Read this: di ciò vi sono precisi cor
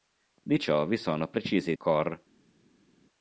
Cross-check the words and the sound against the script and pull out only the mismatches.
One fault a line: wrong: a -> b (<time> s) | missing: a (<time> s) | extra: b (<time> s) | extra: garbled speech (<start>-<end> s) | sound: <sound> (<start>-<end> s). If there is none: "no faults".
no faults